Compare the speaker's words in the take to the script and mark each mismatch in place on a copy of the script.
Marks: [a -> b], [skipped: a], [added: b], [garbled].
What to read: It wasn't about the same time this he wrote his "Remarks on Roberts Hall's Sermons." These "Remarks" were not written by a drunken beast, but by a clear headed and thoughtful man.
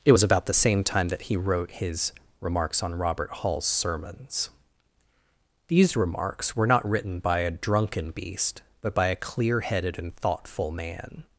It [wasn't -> was] about the same time [this -> that] he wrote his "Remarks on [Roberts -> Robert] Hall's Sermons." These "Remarks" were not written by a drunken beast, but by a clear headed and thoughtful man.